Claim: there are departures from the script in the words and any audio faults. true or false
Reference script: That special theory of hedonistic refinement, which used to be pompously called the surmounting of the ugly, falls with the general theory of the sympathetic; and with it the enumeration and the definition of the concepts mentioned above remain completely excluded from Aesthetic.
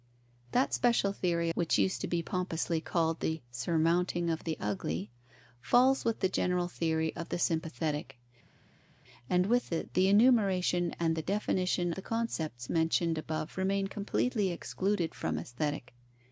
true